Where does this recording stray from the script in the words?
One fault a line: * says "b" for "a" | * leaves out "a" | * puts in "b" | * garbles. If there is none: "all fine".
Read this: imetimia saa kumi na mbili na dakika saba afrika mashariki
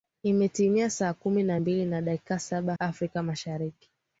all fine